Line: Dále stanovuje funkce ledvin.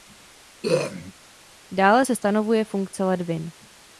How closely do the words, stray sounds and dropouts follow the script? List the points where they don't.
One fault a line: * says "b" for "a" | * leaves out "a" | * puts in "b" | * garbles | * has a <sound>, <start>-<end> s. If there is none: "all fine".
* has a throat clearing, 0.6-1.1 s
* puts in "se"